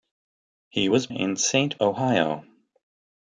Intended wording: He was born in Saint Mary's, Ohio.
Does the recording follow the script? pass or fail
fail